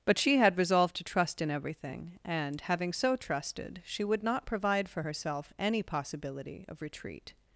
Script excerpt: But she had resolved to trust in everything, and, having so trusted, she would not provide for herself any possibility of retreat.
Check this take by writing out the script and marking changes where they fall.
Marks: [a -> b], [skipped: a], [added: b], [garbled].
But she had resolved to trust in everything, and, having so trusted, she would not provide for herself any possibility of retreat.